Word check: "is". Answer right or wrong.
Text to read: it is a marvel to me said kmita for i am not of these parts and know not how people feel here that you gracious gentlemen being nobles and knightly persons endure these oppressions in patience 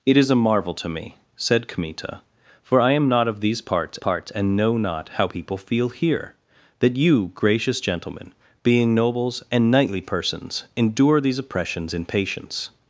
right